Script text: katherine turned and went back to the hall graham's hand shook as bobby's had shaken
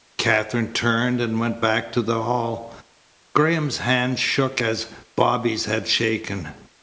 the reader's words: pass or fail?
pass